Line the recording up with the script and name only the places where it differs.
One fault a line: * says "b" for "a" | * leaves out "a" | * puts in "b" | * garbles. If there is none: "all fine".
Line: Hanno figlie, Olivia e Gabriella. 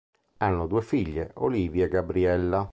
* puts in "due"